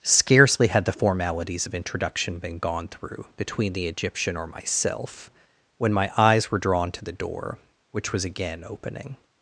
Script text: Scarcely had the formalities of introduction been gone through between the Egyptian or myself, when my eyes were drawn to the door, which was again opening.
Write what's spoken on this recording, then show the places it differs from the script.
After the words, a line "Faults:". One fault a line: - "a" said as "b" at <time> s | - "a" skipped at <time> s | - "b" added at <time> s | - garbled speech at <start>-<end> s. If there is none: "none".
Scarcely had the formalities of introduction been gone through between the Egyptian or myself, when my eyes were drawn to the door, which was again opening.
Faults:
none